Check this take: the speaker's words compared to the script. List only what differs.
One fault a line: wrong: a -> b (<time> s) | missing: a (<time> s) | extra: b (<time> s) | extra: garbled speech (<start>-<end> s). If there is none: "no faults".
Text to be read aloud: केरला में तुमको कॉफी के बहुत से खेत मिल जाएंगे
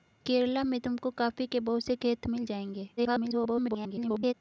extra: garbled speech (3.0-4.3 s)